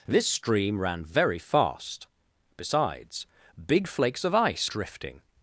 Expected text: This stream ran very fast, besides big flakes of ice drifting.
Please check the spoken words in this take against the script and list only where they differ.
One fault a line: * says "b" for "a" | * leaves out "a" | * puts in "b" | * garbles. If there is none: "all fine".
all fine